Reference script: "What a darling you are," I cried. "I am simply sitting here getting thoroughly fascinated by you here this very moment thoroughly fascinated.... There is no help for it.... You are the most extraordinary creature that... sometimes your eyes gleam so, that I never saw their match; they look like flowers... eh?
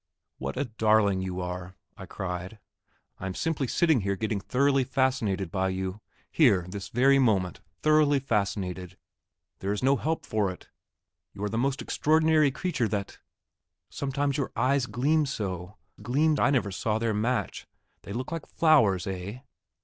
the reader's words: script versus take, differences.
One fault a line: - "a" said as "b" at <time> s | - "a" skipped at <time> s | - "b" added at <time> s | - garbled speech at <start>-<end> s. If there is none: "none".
- "that" said as "gleam" at 16.0 s